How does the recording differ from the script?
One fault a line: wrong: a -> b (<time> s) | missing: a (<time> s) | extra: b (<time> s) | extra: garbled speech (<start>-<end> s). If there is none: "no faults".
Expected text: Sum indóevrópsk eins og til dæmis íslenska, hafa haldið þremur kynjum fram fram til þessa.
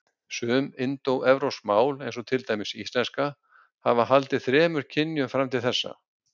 extra: mál (1.7 s)
missing: fram (5.5 s)